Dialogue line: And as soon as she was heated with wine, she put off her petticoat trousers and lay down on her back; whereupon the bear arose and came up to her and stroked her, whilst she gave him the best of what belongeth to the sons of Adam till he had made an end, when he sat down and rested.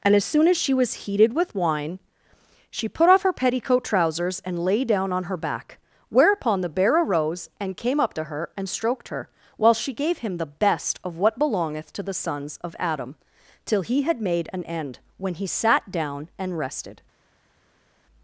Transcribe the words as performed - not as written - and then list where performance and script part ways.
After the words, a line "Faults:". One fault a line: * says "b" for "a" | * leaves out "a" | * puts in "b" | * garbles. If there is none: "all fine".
And as soon as she was heated with wine, she put off her petticoat trousers and lay down on her back; whereupon the bear arose and came up to her and stroked her, while she gave him the best of what belongeth to the sons of Adam till he had made an end, when he sat down and rested.
Faults:
* says "while" for "whilst"